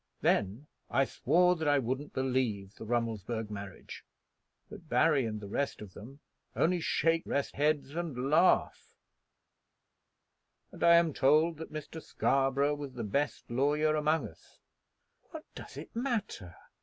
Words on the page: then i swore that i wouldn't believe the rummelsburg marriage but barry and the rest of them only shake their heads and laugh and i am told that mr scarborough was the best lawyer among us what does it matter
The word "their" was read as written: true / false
false